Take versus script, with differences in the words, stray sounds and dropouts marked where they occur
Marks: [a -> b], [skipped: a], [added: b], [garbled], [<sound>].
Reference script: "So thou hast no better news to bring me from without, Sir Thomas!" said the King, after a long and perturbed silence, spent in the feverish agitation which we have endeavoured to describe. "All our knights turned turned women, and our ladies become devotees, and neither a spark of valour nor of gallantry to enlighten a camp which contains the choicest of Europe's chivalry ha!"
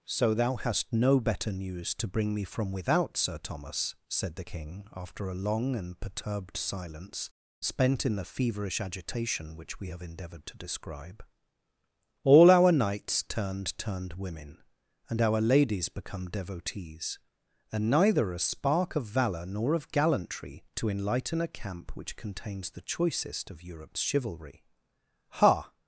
"So thou hast no better news to bring me from without, Sir Thomas!" said the King, after a long and perturbed silence, spent in the feverish agitation which we have endeavoured to describe. "All our knights turned turned women, and our ladies become devotees, and neither a spark of valour nor of gallantry to enlighten a camp which contains the choicest of Europe's chivalry ha!"